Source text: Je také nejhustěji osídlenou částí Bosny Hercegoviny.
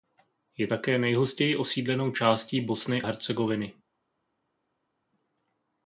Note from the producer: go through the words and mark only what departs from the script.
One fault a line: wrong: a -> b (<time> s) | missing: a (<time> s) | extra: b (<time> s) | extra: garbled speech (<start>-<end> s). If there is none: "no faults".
no faults